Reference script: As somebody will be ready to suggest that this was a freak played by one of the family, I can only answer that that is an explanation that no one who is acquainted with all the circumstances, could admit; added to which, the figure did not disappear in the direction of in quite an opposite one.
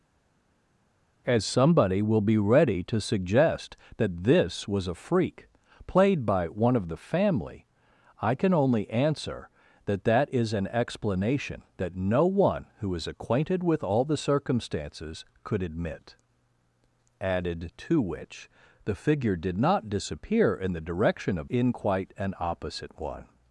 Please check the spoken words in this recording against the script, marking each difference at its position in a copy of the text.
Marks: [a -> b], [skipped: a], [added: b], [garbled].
As somebody will be ready to suggest that this was a freak played by one of the family, I can only answer that that is an explanation that no one who is acquainted with all the circumstances, could admit; added to which, the figure did not disappear in the direction of in quite an opposite one.